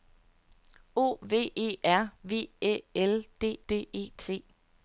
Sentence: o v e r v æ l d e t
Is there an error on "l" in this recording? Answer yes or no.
no